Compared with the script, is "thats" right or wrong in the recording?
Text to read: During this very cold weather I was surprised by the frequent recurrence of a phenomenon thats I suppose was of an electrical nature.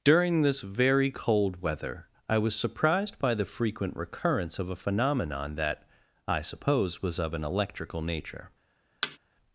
wrong